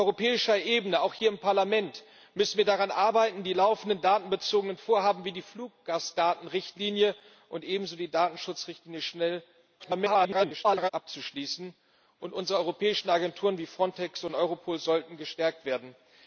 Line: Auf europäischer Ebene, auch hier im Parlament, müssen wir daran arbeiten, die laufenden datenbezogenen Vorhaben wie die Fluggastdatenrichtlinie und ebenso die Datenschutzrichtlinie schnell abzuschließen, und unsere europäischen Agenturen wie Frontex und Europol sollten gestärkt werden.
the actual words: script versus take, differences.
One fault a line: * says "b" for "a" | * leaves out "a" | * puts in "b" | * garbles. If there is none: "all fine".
* garbles